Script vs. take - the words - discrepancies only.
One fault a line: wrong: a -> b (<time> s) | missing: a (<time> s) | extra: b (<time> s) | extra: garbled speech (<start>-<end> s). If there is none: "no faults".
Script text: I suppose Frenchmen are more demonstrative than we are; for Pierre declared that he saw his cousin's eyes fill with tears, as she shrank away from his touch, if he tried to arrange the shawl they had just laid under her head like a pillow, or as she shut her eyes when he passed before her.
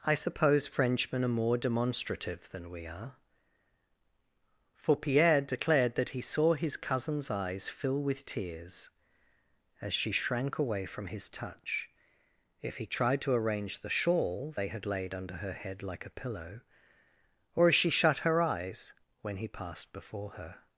missing: just (14.9 s)